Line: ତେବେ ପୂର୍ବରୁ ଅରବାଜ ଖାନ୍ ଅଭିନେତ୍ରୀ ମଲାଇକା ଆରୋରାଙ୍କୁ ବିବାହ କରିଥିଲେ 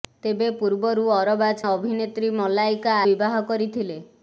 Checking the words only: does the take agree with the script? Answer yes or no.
no